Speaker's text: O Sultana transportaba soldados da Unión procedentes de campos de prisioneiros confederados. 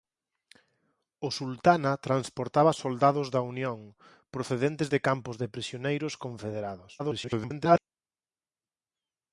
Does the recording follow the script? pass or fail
fail